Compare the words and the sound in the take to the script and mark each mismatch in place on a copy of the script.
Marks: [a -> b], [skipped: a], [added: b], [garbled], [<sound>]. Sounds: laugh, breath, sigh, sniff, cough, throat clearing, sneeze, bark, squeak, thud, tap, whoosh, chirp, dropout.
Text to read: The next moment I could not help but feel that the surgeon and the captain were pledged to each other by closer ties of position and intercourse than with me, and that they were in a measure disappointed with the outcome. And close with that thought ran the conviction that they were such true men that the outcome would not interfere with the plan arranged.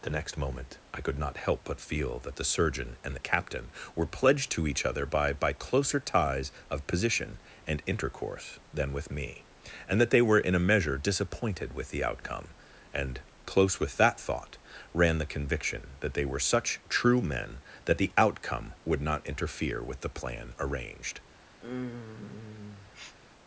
The next moment I could not help but feel that the surgeon and the captain were pledged to each other by [added: by] closer ties of position and intercourse than with me, and that they were in a measure disappointed with the outcome. And close with that thought ran the conviction that they were such true men that the outcome would not interfere with the plan arranged. [sniff]